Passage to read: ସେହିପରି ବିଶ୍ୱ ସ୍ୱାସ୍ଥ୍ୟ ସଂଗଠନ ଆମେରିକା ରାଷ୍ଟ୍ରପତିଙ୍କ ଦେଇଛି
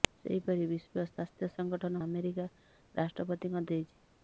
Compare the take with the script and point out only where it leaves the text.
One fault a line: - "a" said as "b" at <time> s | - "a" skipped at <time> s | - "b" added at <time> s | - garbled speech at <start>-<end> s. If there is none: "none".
none